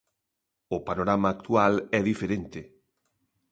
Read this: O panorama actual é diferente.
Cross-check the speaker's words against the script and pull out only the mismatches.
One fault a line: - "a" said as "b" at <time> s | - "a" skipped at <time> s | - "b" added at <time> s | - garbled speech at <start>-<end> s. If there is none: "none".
none